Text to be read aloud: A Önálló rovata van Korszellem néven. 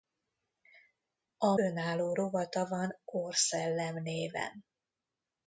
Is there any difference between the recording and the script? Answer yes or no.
no